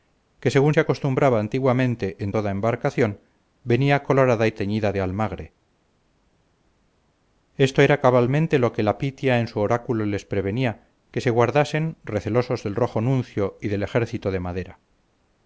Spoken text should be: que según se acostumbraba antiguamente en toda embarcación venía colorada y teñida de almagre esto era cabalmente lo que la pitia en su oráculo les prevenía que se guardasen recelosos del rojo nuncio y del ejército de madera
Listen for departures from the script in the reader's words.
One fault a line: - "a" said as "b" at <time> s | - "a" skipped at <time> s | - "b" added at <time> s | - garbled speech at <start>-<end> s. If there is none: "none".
none